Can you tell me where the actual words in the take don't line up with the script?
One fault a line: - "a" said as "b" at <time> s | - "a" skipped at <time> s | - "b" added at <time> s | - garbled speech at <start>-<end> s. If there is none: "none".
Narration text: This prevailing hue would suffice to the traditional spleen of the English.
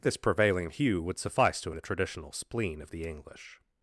none